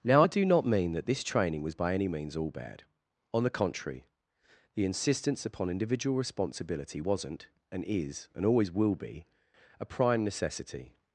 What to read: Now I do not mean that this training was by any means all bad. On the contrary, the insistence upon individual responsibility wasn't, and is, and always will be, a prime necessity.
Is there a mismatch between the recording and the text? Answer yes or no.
no